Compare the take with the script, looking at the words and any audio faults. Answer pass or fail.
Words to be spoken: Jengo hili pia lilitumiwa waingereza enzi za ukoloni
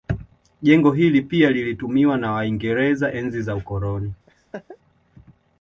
fail